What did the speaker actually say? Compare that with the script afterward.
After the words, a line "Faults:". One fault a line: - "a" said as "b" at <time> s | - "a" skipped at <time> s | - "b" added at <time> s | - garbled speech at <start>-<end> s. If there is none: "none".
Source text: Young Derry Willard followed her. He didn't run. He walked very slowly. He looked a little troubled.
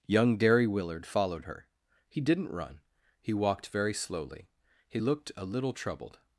Young Derry Willard followed her. He didn't run. He walked very slowly. He looked a little troubled.
Faults:
none